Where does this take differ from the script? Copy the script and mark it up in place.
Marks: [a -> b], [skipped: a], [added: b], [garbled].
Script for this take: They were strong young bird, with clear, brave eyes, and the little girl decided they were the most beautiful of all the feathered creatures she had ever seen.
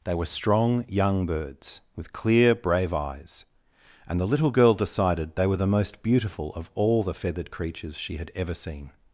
They were strong young [bird, -> birds] with clear, brave eyes, and the little girl decided they were the most beautiful of all the feathered creatures she had ever seen.